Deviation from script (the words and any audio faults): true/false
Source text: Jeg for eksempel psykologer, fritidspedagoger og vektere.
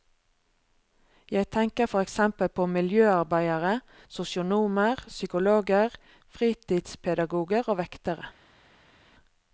true